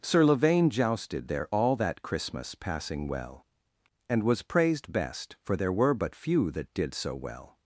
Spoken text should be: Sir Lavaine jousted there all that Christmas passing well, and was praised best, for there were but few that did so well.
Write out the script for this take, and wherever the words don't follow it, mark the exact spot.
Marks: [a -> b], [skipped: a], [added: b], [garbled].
Sir Lavaine jousted there all that Christmas passing well, and was praised best, for there were but few that did so well.